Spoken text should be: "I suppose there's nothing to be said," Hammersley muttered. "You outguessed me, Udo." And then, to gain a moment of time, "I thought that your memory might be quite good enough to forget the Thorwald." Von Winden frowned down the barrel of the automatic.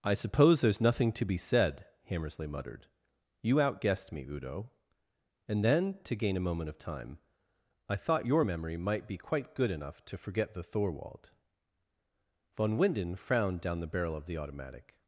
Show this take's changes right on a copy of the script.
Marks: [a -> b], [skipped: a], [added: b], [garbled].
"I suppose there's nothing to be said," Hammersley muttered. "You outguessed me, Udo." And then, to gain a moment of time, "I thought [skipped: that] your memory might be quite good enough to forget the Thorwald." Von Winden frowned down the barrel of the automatic.